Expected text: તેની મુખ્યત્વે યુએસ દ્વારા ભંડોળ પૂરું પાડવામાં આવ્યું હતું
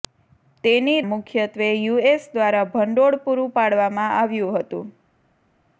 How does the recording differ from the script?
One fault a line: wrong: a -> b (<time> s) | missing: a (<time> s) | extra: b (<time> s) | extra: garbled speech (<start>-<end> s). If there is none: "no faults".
no faults